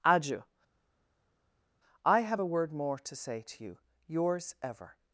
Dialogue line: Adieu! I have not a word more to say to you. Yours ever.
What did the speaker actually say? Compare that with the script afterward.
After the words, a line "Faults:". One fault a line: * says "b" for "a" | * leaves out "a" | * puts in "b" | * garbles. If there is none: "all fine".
Adieu! I have a word more to say to you. Yours ever.
Faults:
* leaves out "not"